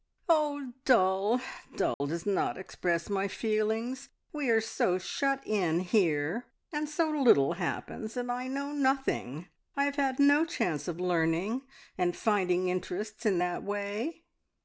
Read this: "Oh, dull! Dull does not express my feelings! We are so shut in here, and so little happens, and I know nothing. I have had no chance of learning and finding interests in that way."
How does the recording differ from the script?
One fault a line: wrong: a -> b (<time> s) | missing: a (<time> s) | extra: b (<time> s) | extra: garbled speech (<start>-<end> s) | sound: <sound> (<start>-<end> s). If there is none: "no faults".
sound: dropout (1.9-2.0 s)